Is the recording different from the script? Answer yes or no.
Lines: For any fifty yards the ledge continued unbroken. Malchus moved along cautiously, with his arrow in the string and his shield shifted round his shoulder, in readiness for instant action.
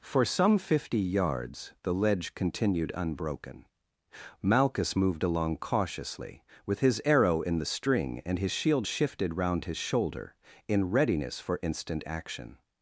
yes